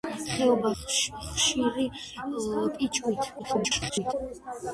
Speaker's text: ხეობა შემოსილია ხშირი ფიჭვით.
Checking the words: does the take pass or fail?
fail